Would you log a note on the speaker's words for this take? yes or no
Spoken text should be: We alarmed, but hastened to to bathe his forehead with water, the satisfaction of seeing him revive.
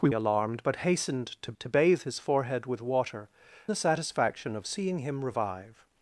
no